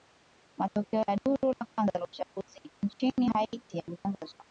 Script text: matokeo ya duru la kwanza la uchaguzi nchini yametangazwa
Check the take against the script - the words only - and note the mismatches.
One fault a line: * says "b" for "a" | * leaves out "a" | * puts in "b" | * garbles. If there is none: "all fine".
* puts in "haiti"